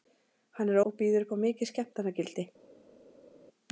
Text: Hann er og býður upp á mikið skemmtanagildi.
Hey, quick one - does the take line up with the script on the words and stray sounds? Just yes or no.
yes